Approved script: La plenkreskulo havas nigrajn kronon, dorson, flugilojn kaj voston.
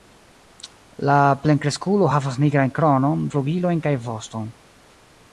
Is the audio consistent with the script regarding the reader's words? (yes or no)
no